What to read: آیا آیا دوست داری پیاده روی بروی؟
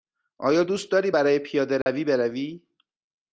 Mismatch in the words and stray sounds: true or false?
true